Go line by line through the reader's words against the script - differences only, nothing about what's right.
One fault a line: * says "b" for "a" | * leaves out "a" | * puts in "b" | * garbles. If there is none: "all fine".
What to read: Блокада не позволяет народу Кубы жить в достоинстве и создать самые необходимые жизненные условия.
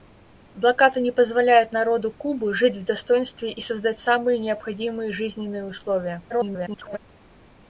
* garbles